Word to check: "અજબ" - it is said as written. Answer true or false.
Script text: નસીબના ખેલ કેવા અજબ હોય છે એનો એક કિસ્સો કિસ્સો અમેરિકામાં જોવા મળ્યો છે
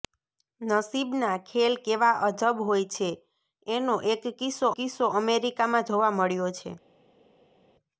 true